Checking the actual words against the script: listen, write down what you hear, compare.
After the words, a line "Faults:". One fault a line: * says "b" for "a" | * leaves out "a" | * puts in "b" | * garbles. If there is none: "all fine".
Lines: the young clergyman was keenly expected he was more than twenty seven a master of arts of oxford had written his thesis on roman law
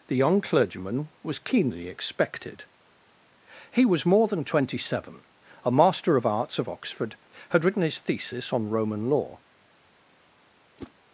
the young clergyman was keenly expected he was more than twenty seven a master of arts of oxford had written his thesis on roman law
Faults:
all fine